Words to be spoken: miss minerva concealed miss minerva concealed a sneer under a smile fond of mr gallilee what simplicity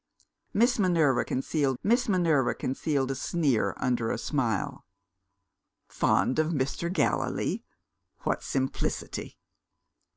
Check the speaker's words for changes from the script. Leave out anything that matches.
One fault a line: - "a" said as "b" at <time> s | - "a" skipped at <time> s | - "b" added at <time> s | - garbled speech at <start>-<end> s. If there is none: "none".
none